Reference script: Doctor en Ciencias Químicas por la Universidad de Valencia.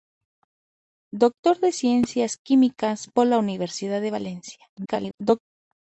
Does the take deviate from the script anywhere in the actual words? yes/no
yes